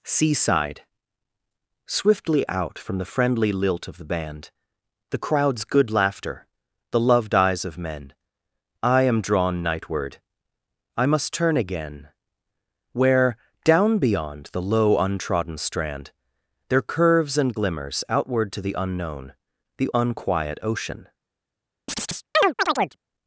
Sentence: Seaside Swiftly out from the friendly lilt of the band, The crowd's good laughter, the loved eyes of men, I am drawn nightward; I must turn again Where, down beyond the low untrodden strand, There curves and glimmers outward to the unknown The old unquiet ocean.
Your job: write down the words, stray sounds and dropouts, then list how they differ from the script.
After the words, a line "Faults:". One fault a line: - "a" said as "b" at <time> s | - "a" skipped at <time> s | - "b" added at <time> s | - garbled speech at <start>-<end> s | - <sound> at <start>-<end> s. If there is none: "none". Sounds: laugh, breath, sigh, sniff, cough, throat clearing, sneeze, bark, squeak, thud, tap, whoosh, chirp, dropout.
Seaside Swiftly out from the friendly lilt of the band, The crowd's good laughter, the loved eyes of men, I am drawn nightward; I must turn again Where, down beyond the low untrodden strand, There curves and glimmers outward to the unknown The unquiet ocean.
Faults:
- "old" skipped at 19.9 s
- chirp at 21.9-23.0 s